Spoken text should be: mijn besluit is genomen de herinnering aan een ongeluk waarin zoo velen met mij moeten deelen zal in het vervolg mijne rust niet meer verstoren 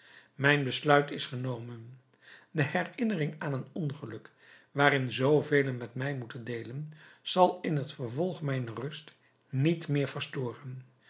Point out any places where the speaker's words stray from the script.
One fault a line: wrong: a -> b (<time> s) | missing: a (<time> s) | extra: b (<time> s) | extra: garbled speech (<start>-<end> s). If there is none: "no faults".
no faults